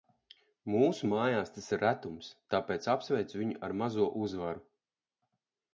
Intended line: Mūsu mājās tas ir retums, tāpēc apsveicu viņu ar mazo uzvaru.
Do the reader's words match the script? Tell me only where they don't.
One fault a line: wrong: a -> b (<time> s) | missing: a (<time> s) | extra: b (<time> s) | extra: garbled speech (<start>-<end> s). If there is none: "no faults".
no faults